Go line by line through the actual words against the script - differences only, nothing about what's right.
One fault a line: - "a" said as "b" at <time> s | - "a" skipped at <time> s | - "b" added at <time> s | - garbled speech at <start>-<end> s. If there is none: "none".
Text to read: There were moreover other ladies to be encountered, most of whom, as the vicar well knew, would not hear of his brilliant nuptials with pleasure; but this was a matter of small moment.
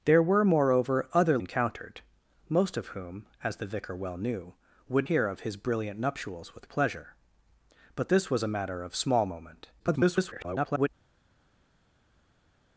- "ladies to be" skipped at 1.4 s
- "not" skipped at 5.1 s
- garbled speech at 9.8-10.9 s